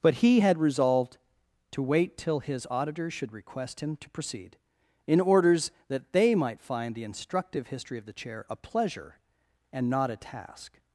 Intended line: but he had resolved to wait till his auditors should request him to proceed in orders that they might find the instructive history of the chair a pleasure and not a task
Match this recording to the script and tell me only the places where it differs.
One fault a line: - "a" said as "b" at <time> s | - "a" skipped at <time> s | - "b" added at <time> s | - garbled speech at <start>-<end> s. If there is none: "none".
none